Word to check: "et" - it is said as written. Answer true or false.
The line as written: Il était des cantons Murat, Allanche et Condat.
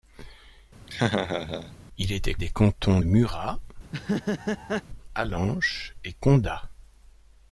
true